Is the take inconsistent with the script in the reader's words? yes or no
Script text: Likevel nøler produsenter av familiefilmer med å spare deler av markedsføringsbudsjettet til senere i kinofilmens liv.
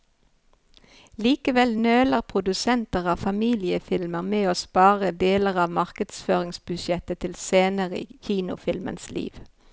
no